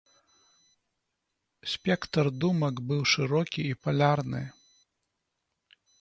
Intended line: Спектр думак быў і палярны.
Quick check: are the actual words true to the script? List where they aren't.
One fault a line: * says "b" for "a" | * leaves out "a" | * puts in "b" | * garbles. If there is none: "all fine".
* puts in "шырокі"